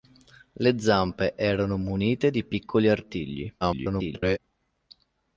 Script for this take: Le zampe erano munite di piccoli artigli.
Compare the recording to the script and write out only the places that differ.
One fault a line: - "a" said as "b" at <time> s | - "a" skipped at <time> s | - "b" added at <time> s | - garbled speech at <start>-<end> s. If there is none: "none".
- garbled speech at 3.6-4.4 s